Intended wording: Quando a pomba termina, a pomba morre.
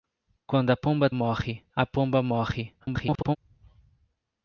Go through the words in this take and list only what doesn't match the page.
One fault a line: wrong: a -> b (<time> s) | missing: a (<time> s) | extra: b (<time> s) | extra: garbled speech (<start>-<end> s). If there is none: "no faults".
wrong: termina -> morre (1.1 s)
extra: garbled speech (2.8-3.4 s)